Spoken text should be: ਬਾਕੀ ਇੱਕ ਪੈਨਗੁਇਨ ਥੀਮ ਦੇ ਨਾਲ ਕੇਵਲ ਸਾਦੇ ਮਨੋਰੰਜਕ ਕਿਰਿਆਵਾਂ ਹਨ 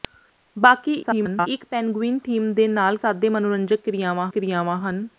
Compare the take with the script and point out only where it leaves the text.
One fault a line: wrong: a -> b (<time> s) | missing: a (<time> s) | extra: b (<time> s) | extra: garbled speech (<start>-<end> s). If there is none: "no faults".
extra: garbled speech (1.0-1.5 s)
missing: ਕੇਵਲ (3.0 s)
extra: ਕਿਰਿਆਵਾਂ (4.3 s)